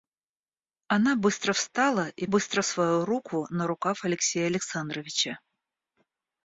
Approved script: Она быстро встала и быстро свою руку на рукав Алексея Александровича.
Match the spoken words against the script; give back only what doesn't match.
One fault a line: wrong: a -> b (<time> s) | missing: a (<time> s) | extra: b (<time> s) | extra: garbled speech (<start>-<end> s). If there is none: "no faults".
no faults